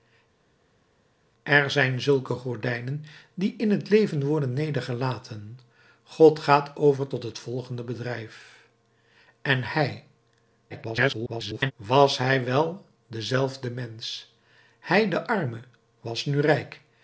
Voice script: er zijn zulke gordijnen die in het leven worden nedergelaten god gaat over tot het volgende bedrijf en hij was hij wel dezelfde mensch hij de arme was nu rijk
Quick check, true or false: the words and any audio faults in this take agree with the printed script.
false